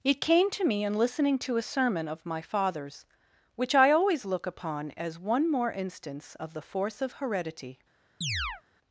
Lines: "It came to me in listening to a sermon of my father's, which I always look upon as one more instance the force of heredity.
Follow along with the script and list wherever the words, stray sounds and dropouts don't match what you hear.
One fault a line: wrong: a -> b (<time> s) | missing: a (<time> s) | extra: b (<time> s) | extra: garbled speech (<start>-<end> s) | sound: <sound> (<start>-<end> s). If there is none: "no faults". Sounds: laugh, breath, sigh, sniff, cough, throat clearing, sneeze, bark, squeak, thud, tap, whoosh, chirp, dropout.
extra: of (6.4 s)
sound: chirp (8.2-8.6 s)